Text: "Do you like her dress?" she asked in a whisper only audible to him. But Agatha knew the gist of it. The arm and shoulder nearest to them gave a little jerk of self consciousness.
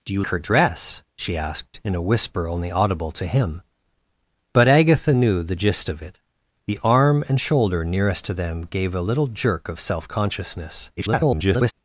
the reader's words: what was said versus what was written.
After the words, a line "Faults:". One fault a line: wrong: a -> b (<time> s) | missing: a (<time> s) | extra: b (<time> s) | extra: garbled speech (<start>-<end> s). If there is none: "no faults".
"Do you her dress?" she asked in a whisper only audible to him. But Agatha knew the gist of it. The arm and shoulder nearest to them gave a little jerk of self consciousness. [garbled]
Faults:
missing: like (0.2 s)
extra: garbled speech (11.0-11.7 s)